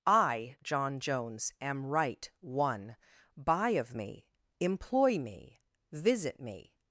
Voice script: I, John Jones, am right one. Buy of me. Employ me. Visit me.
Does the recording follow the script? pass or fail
pass